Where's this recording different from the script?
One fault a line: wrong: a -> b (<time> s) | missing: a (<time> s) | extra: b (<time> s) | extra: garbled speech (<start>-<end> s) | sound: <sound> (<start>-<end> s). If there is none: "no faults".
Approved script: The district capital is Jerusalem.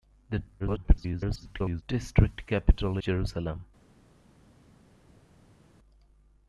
extra: garbled speech (0.6-1.8 s)
missing: is (3.0 s)